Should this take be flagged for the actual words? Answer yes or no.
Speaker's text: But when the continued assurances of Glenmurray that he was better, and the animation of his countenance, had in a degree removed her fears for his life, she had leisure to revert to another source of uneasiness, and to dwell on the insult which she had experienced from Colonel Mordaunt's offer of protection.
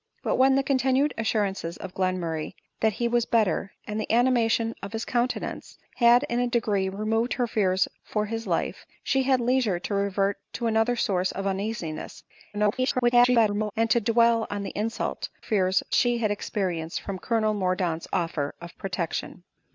yes